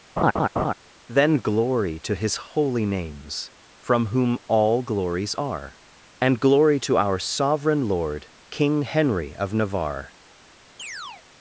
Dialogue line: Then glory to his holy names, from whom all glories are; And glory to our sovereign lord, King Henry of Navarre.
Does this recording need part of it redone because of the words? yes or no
no